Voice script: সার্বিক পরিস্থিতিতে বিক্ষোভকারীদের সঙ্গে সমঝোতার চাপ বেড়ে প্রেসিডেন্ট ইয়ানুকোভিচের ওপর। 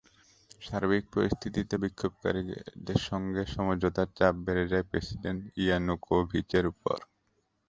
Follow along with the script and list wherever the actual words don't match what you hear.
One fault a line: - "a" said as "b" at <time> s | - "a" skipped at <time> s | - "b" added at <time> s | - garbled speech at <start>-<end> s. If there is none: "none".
- "যায়" added at 4.7 s